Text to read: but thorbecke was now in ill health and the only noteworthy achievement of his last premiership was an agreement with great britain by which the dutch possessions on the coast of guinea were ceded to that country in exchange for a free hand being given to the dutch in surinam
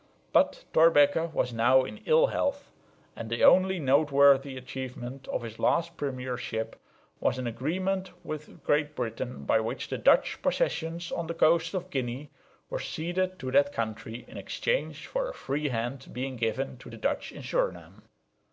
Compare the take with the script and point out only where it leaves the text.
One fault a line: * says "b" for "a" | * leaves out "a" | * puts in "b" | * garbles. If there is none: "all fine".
all fine